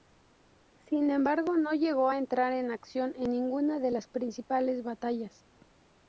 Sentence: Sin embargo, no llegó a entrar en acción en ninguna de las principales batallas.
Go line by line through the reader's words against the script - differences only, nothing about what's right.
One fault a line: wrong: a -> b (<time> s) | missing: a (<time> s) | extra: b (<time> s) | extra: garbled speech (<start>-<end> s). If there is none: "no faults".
no faults